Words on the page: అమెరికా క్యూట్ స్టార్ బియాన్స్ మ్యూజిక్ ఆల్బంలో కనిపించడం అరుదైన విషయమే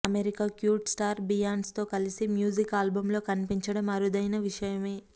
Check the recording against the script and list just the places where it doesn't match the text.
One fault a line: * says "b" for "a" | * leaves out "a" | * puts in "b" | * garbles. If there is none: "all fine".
* puts in "తో కలిసి"